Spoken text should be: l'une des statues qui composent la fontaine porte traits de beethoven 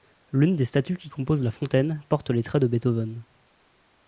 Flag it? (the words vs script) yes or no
yes